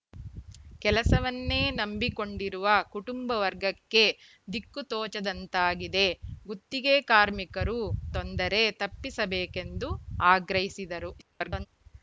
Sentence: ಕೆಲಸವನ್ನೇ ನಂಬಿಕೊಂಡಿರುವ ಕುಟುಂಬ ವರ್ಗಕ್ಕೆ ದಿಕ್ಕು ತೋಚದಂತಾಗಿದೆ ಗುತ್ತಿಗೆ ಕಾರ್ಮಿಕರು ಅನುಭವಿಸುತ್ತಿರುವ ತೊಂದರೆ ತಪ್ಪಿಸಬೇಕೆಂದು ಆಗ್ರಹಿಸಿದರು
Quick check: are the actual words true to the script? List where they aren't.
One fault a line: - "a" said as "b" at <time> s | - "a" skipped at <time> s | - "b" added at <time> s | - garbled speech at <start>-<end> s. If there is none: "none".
- "ಅನುಭವಿಸುತ್ತಿರುವ" skipped at 7.8 s
- garbled speech at 11.2-11.7 s